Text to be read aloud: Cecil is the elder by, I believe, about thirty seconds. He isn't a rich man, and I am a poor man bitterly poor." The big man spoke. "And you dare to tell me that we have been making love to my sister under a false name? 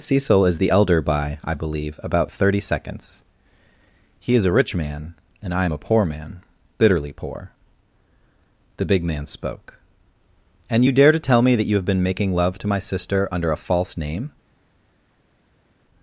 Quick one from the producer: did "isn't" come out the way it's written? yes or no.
no